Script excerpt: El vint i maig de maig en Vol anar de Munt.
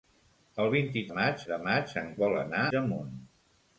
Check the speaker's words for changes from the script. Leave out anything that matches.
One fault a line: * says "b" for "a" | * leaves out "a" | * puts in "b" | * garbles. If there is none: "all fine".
all fine